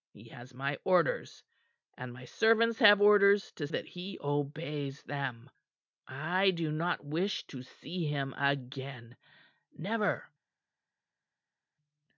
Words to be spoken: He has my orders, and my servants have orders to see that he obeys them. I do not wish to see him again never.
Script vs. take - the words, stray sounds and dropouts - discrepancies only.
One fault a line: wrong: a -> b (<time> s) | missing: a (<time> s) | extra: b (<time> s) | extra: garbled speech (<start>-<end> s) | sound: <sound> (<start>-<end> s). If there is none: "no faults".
missing: see (3.7 s)